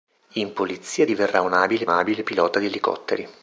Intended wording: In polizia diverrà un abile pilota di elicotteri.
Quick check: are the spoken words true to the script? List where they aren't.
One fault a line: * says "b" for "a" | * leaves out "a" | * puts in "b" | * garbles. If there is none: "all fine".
* puts in "abile"